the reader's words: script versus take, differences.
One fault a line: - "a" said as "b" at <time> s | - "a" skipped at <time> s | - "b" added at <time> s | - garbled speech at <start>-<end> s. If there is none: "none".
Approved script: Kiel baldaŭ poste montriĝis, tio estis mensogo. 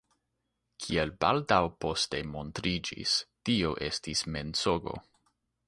none